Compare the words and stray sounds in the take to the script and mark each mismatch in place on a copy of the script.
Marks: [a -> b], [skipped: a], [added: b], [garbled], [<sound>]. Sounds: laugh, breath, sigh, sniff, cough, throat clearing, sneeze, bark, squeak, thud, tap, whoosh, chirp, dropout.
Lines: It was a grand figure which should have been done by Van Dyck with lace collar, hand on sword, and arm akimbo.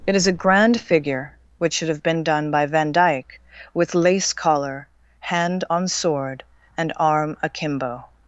It [was -> is] a grand figure which should have been done by Van Dyck with lace collar, hand on sword, and arm akimbo.